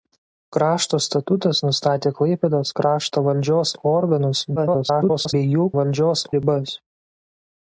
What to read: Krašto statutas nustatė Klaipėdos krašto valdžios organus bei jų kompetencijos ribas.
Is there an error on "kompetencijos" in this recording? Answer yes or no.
yes